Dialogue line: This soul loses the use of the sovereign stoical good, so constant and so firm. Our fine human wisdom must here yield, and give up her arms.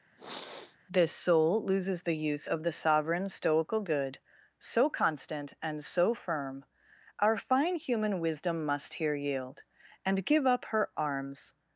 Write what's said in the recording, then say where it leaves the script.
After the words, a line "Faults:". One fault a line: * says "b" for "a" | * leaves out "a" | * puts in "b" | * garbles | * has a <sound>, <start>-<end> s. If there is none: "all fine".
This soul loses the use of the sovereign stoical good, so constant and so firm. Our fine human wisdom must here yield, and give up her arms.
Faults:
* has a sniff, 0.2-0.8 s